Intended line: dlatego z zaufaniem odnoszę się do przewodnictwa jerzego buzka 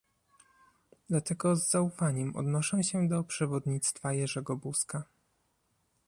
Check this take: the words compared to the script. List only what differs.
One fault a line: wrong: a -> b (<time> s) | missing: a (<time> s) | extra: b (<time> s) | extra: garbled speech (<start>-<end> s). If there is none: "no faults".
no faults